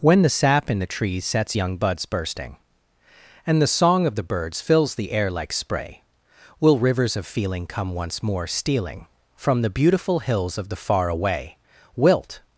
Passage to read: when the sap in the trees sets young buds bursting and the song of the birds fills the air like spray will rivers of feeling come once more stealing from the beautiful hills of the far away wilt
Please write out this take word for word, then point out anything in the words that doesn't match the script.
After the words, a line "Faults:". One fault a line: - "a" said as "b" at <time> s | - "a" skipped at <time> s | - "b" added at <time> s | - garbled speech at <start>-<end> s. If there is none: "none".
when the sap in the trees sets young buds bursting and the song of the birds fills the air like spray will rivers of feeling come once more stealing from the beautiful hills of the far away wilt
Faults:
none